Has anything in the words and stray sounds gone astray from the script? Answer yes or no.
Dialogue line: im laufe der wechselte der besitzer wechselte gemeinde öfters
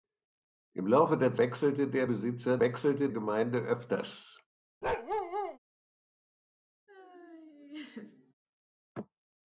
yes